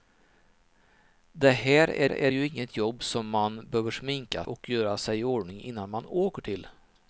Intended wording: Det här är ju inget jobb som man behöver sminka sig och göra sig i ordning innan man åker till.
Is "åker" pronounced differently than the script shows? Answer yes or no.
no